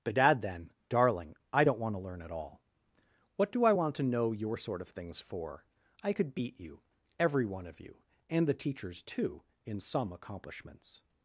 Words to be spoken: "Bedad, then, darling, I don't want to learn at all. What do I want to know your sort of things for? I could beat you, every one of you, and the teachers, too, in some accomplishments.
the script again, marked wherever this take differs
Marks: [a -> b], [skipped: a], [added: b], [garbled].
"Bedad, then, darling, I don't want to learn at all. What do I want to know your sort of things for? I could beat you, every one of you, and the teachers, too, in some accomplishments.